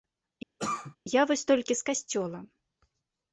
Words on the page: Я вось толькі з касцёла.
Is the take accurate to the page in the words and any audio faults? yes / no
no